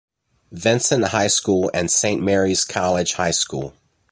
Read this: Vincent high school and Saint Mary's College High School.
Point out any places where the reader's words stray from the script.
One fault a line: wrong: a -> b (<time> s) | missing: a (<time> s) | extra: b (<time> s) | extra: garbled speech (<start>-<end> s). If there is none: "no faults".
no faults